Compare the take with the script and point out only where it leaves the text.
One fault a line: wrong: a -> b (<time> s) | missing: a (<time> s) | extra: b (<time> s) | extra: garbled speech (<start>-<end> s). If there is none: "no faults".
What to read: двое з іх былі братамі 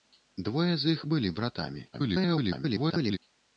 extra: garbled speech (1.9-3.2 s)